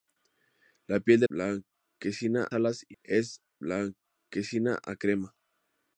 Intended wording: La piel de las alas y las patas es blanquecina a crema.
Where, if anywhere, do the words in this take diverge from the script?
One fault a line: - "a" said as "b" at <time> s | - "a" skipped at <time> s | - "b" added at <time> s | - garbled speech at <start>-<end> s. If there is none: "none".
- "las" said as "blanquecina" at 1.3 s
- "las patas" skipped at 3.0 s